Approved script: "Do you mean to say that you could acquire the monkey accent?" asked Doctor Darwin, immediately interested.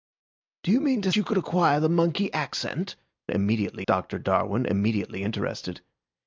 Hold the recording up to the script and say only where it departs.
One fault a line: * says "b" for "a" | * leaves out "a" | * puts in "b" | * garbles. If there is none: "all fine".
* leaves out "say that"
* says "immediately" for "asked"